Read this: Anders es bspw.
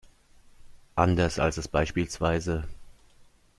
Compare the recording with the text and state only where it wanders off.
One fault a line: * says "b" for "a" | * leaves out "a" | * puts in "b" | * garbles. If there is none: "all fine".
* puts in "als"